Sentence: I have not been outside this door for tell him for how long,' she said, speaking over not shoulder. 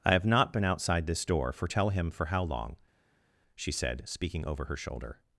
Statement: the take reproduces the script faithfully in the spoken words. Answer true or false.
false